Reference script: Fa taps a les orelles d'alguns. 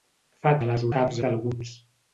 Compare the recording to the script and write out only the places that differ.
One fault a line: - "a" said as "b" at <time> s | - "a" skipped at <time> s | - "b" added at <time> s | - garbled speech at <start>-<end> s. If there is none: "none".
- "taps" skipped at 0.5 s
- "orelles" said as "taps" at 0.9 s